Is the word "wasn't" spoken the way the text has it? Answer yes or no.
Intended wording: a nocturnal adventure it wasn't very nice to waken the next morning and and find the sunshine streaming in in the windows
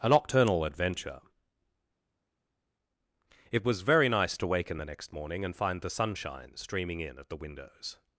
no